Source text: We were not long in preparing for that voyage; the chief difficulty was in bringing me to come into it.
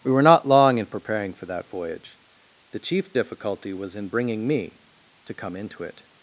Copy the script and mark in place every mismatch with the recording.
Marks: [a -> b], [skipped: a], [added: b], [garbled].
We were not long in preparing for that voyage; the chief difficulty was in bringing me to come into it.